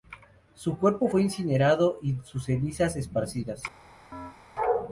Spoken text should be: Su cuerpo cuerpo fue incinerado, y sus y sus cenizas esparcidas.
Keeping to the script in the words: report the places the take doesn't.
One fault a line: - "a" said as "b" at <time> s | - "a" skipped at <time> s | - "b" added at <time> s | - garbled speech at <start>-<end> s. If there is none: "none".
- "cuerpo" skipped at 1.1 s
- "y sus" skipped at 2.4 s